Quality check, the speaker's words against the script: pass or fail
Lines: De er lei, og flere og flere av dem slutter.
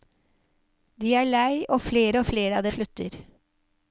fail